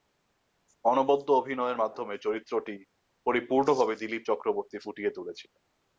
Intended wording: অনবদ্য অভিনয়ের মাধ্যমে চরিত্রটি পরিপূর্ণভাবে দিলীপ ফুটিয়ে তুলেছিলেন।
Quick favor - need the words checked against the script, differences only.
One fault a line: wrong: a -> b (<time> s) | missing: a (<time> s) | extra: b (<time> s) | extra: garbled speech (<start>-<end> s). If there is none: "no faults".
extra: চক্রবর্তী (4.3 s)